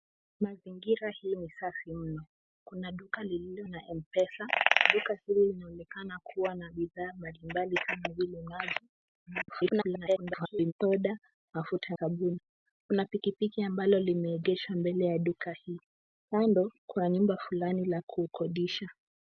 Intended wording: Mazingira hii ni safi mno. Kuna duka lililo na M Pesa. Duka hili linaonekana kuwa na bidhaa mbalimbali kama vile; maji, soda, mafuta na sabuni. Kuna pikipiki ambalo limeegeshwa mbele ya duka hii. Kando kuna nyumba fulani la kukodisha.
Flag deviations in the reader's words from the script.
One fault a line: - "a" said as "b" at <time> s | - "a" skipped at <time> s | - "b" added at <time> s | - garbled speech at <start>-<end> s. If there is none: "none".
- garbled speech at 9.3-10.7 s
- "na" skipped at 11.9 s